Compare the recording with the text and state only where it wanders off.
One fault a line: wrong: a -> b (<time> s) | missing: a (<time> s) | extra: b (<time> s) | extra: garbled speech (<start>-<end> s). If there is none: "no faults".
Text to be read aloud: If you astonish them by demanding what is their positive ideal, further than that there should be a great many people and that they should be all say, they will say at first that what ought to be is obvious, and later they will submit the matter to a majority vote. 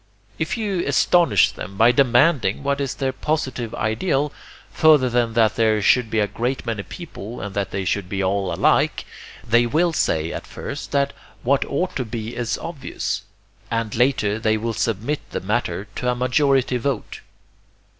wrong: say -> alike (8.5 s)